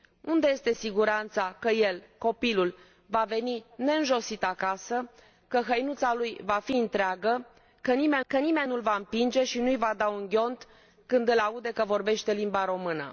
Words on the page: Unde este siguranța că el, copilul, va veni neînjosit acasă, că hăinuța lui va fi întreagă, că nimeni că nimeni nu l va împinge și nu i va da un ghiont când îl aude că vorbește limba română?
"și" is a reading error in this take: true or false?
false